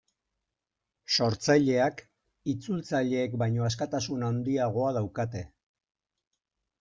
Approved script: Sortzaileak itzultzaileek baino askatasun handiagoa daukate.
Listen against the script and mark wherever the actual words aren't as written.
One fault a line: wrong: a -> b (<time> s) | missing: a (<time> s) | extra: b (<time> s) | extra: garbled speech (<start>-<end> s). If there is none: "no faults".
no faults